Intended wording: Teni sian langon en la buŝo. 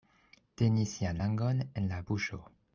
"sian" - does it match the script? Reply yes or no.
yes